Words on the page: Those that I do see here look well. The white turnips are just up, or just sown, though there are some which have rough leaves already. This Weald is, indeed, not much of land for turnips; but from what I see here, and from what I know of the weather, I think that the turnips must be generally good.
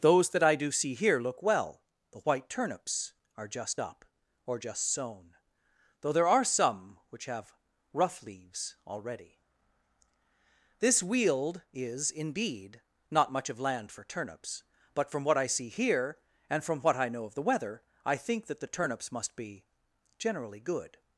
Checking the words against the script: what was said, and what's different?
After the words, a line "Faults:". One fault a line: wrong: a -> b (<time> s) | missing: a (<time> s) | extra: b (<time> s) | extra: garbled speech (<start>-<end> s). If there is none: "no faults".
Those that I do see here look well. The white turnips are just up, or just sown, though there are some which have rough leaves already. This Weald is, indeed, not much of land for turnips; but from what I see here, and from what I know of the weather, I think that the turnips must be generally good.
Faults:
no faults